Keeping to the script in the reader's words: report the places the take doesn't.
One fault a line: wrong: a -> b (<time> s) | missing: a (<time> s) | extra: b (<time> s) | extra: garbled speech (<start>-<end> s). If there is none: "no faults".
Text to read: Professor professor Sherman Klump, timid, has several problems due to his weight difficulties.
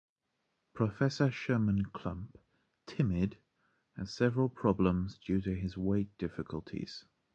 missing: professor (1.3 s)